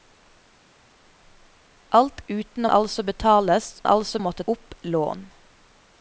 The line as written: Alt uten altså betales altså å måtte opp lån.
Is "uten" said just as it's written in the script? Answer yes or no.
yes